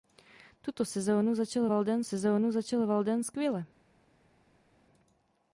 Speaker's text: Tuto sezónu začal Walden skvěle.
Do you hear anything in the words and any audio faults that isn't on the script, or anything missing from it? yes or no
yes